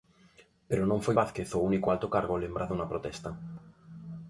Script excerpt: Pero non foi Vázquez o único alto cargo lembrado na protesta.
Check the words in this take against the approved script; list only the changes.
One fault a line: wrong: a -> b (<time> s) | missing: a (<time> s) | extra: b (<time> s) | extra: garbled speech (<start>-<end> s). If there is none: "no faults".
no faults